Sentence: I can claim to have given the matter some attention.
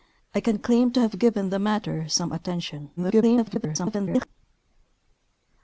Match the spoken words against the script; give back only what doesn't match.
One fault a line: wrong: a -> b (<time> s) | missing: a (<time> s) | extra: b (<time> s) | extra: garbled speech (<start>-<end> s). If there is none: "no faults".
extra: garbled speech (3.0-4.3 s)